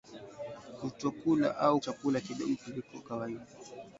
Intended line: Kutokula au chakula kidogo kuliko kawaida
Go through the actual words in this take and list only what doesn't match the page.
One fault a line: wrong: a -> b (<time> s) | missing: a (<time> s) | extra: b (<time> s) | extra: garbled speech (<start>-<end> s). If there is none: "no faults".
no faults